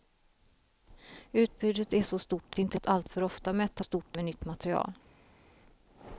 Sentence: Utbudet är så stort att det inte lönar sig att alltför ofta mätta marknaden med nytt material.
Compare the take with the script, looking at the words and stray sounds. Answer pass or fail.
fail